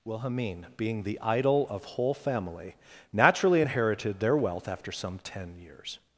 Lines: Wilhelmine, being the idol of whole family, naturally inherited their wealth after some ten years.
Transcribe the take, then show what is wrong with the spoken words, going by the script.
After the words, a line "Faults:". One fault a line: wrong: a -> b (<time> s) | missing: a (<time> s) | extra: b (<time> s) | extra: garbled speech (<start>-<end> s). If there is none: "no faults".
Wilhelmine, being the idol of whole family, naturally inherited their wealth after some ten years.
Faults:
no faults